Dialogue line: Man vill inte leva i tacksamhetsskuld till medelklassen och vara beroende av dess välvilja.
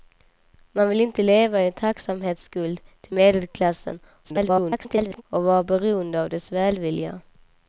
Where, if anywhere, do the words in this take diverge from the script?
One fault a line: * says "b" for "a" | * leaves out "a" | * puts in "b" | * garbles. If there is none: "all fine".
* garbles